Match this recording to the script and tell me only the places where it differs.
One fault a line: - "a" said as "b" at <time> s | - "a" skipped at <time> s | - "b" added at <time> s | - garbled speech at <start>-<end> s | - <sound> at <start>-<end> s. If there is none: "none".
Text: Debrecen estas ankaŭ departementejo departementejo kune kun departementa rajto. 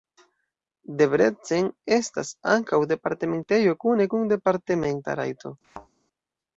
- "departementejo" skipped at 3.8 s
- thud at 5.6-5.9 s